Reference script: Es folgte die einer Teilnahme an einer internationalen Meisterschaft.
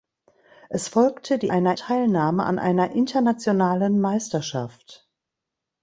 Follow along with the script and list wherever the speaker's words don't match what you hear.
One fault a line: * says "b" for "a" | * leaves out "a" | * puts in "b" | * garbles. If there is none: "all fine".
all fine